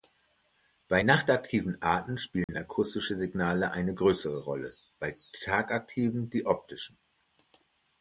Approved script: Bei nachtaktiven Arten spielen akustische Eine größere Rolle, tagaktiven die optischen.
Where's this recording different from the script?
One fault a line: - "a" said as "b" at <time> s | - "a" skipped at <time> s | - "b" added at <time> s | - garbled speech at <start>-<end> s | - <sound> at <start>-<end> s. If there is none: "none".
- dropout at 2.4-2.5 s
- "Signale" added at 3.2 s
- "bei" added at 5.0 s